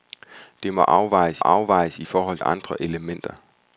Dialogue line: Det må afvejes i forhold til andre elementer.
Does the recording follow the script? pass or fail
fail